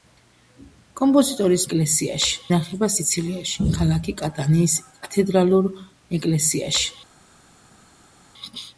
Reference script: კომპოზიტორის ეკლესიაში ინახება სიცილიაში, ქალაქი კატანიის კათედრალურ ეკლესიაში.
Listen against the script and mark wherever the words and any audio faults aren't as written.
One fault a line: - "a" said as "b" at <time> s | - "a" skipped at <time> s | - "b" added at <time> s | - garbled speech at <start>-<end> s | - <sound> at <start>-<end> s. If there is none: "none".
none